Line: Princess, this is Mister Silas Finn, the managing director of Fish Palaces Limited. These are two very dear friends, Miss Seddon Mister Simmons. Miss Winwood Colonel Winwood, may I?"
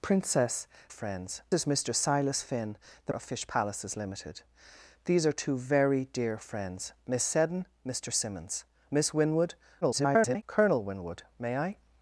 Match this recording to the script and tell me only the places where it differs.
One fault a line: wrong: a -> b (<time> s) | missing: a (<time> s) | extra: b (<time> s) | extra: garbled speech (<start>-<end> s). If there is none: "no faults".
wrong: this -> friends (0.9 s)
missing: managing director (3.1 s)
extra: garbled speech (9.8-10.4 s)